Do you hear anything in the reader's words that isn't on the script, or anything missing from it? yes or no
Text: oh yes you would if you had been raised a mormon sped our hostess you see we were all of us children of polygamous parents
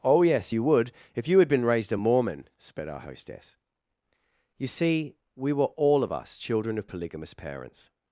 no